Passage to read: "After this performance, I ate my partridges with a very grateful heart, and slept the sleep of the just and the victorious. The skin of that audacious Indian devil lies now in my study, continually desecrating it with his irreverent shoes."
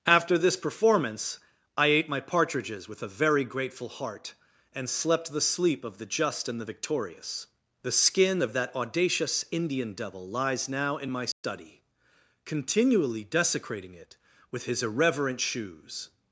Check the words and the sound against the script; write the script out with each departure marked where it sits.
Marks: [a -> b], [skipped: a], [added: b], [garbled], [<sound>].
"After this performance, I ate my partridges with a very grateful heart, and slept the sleep of the just and the victorious. The skin of that audacious Indian devil lies now in my study, [dropout] continually desecrating it with his irreverent shoes."